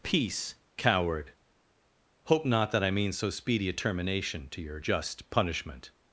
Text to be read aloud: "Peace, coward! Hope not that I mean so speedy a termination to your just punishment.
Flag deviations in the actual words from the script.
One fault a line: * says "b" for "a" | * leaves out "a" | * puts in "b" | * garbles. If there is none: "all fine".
all fine